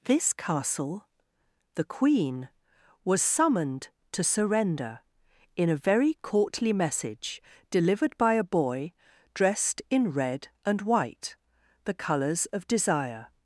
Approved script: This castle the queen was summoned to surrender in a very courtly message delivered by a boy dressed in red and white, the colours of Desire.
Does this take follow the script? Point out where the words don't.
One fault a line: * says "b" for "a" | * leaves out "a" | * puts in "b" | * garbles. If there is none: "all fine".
all fine